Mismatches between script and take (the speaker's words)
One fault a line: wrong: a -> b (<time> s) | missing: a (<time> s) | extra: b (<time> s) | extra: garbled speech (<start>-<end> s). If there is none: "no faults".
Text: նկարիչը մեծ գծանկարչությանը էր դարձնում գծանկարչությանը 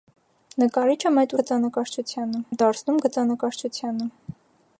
no faults